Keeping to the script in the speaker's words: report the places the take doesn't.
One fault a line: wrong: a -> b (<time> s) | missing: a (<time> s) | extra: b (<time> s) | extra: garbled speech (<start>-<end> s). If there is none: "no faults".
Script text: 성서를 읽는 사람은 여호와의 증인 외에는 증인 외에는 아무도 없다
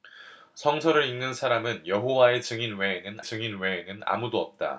no faults